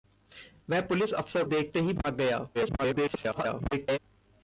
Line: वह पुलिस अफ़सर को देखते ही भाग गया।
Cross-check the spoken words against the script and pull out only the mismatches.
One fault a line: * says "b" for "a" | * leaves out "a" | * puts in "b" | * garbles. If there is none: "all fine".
* leaves out "को"
* garbles